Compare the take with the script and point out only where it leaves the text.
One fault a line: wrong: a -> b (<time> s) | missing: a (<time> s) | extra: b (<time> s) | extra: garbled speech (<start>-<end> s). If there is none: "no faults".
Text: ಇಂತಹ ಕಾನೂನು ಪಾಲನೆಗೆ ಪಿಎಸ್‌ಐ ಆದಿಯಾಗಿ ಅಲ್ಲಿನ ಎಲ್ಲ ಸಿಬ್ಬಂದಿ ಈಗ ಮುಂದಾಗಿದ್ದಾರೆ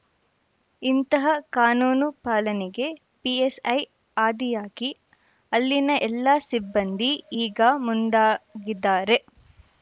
no faults